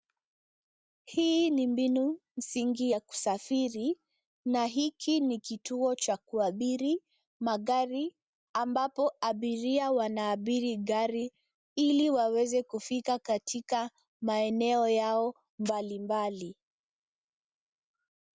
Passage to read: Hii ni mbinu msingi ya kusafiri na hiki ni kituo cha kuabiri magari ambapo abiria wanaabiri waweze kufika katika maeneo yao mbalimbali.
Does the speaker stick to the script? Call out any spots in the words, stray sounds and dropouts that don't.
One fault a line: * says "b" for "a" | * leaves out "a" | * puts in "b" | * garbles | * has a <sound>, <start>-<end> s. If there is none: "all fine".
* puts in "gari ili"